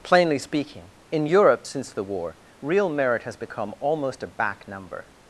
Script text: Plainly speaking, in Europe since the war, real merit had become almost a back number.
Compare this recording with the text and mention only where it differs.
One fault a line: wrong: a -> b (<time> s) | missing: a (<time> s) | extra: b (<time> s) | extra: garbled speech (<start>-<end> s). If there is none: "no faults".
wrong: had -> has (3.2 s)